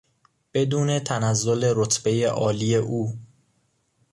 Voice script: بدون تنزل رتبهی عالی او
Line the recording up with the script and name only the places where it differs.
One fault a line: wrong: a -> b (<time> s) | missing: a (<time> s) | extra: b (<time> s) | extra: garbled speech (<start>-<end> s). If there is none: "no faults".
no faults